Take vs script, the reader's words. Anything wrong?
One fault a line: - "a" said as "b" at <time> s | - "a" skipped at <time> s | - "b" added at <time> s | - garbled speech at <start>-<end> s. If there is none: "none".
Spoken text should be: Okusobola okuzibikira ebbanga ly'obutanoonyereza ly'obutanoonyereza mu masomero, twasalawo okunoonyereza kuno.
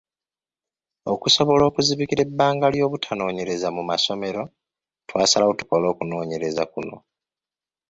- "ly'obutanoonyereza" skipped at 3.7 s
- "tukole" added at 5.6 s